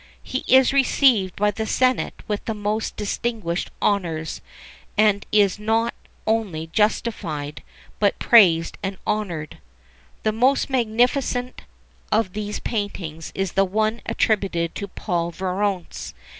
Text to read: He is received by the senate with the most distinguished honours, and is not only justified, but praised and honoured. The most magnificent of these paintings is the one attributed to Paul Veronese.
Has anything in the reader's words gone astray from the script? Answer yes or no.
no